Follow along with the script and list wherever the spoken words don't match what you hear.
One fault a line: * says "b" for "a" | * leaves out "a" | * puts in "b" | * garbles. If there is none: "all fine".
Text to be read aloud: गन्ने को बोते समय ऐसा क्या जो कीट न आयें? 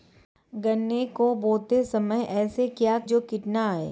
all fine